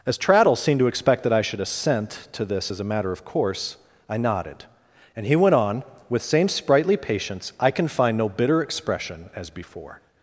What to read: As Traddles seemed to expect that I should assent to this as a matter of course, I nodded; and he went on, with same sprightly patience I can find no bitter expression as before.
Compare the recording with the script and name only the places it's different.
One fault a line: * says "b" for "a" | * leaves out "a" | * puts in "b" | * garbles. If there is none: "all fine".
all fine